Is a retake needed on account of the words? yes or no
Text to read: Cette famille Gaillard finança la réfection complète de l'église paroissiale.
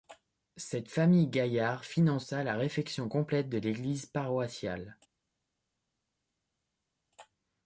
no